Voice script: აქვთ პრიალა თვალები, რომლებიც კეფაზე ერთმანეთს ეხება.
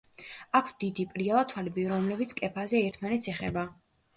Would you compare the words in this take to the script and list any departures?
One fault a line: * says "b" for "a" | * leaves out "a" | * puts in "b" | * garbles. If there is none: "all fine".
* puts in "დიდი"